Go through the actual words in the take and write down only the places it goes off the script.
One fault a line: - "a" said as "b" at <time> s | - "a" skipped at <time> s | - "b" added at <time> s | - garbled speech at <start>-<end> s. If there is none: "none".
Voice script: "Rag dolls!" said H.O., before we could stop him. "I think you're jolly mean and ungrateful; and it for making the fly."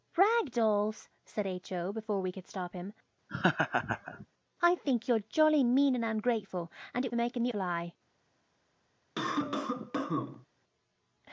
none